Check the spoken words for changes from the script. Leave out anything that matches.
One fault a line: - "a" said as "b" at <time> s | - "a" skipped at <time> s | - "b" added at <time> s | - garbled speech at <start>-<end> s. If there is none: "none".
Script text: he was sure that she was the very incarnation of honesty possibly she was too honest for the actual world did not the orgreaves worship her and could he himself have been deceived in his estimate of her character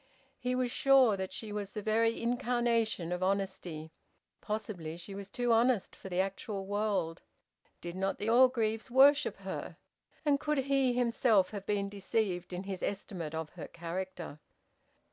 none